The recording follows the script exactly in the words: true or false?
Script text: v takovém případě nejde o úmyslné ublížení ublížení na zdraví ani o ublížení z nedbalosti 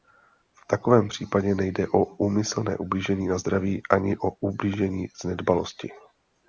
false